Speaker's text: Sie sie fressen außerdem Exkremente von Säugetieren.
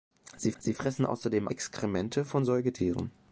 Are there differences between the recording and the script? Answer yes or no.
no